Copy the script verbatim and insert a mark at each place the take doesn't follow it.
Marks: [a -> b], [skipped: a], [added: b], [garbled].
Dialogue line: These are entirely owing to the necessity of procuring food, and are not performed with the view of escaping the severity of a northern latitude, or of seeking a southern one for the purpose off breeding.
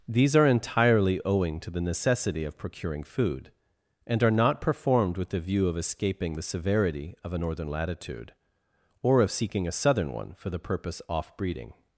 These are entirely owing to the necessity of procuring food, and are not performed with the view of escaping the severity of a northern latitude, or of seeking a southern one for the purpose off breeding.